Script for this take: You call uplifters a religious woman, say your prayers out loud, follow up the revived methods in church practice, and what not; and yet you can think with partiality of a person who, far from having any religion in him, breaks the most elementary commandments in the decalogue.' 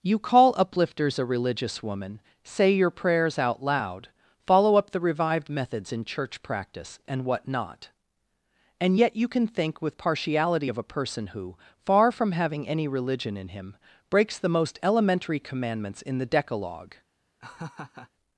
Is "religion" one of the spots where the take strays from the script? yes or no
no